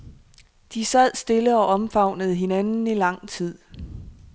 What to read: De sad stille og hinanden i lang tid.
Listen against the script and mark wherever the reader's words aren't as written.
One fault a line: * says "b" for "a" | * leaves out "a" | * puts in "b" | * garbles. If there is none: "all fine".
* puts in "omfavnede"